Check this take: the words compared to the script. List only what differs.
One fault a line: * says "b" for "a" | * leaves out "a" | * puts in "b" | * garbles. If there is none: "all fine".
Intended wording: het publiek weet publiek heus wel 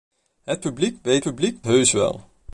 all fine